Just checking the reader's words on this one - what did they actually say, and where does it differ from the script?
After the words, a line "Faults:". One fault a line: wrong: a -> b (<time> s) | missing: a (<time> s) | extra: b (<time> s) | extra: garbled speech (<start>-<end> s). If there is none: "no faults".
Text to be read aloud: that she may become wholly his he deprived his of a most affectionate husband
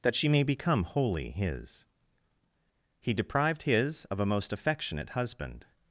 that she may become wholly his he deprived his of a most affectionate husband
Faults:
no faults